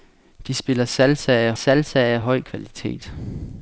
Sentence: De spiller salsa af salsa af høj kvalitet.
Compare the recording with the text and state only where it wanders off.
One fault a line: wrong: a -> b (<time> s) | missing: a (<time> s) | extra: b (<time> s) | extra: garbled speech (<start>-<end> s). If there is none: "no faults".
no faults